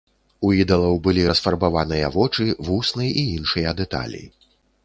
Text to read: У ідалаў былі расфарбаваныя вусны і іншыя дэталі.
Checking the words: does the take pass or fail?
fail